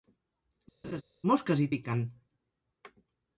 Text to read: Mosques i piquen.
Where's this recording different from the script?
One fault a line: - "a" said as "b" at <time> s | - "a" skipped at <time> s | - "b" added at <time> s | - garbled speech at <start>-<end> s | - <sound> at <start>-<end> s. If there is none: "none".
- laugh at 0.8-1.0 s